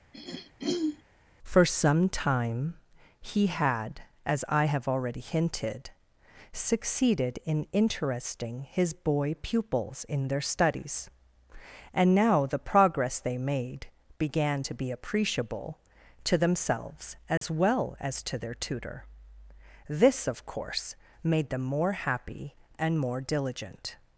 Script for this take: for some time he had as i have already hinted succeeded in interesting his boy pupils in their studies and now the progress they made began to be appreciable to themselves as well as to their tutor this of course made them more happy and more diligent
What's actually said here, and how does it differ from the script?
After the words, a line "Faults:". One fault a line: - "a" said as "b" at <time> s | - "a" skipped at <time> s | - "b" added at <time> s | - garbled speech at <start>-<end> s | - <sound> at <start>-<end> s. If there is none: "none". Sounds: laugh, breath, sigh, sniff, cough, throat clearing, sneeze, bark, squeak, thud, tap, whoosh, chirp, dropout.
for some time he had as i have already hinted succeeded in interesting his boy pupils in their studies and now the progress they made began to be appreciable to themselves as well as to their tutor this of course made them more happy and more diligent
Faults:
- throat clearing at 0.1-1.0 s
- dropout at 17.4-17.4 s